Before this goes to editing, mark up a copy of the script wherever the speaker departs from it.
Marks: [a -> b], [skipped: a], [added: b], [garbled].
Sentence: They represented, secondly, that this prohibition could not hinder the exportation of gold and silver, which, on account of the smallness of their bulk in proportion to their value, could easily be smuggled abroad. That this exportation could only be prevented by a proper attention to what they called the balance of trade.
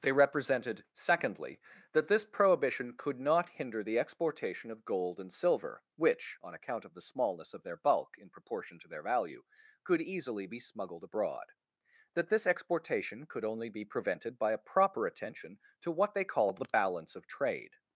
They represented, secondly, that this prohibition could not hinder the exportation of gold and silver, which, on account of the smallness of their bulk in proportion to their value, could easily be smuggled abroad. That this exportation could only be prevented by a proper attention to what they called the balance of trade.